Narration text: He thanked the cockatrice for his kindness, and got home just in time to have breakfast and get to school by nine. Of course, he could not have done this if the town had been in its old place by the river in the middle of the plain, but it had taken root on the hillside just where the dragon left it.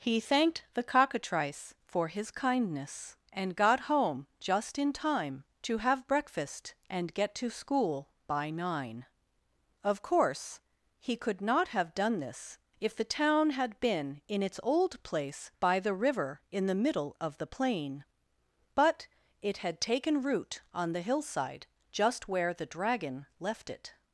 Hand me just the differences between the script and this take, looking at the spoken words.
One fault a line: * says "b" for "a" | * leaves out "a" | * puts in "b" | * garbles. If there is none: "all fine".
all fine